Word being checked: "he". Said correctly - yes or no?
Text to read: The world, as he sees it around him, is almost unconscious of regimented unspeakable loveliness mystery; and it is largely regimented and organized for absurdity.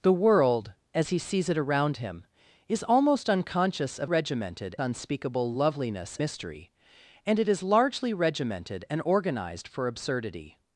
yes